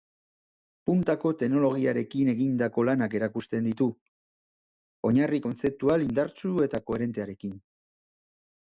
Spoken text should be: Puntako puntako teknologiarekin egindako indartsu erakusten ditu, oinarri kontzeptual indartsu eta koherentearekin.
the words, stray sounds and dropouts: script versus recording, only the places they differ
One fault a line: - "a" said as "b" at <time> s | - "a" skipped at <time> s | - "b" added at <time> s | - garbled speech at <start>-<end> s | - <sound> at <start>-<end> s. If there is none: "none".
- "puntako" skipped at 1.3 s
- "indartsu" said as "lanak" at 2.9 s